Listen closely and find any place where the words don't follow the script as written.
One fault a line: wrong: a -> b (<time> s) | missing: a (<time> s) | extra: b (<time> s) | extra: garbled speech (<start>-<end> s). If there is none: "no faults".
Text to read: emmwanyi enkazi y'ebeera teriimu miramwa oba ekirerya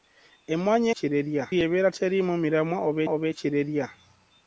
wrong: enkazi -> ekirerya (0.9 s)
extra: oba (3.1 s)